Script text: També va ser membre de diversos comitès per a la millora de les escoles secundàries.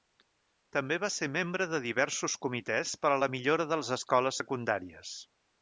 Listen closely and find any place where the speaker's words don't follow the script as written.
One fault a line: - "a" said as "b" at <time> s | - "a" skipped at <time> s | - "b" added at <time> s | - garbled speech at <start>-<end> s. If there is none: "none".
none